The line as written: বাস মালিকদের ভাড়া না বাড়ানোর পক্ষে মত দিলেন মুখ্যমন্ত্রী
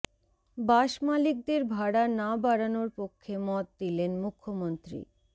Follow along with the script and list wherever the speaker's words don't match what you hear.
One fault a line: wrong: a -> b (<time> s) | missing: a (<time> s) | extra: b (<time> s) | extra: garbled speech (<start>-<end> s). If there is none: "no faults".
no faults